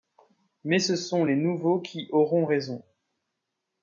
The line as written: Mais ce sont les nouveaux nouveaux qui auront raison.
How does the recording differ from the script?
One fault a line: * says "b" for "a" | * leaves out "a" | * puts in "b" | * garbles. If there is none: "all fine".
* leaves out "nouveaux"